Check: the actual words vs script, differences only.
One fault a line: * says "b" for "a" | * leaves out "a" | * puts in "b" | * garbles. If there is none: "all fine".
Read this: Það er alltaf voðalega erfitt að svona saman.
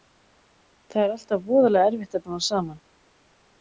all fine